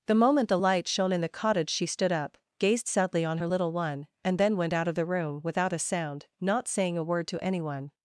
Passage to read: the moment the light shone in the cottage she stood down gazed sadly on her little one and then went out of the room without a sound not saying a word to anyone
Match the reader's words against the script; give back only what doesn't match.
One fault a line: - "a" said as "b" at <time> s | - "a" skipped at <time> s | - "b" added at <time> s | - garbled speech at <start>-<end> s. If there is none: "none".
- "down" said as "up" at 2.1 s